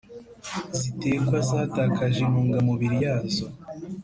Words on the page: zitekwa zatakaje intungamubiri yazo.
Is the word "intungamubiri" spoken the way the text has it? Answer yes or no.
yes